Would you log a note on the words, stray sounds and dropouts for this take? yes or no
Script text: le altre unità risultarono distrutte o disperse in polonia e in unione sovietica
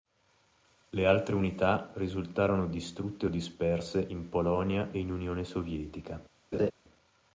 yes